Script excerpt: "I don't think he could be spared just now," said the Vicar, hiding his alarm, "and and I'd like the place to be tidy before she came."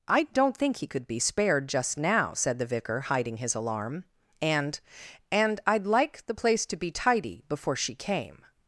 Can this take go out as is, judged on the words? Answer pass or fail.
pass